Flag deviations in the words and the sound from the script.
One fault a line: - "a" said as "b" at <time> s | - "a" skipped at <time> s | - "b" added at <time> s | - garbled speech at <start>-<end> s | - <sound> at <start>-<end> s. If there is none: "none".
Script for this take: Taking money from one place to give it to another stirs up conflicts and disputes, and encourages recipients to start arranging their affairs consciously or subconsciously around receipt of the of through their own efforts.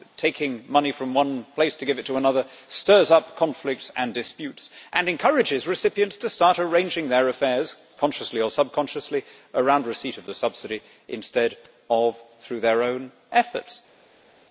- "subsidy instead" added at 10.3 s